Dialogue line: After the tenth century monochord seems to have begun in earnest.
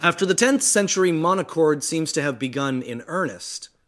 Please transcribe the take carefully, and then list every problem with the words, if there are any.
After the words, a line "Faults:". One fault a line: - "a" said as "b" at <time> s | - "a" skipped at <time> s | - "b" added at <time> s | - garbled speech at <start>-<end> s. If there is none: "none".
After the tenth century monochord seems to have begun in earnest.
Faults:
none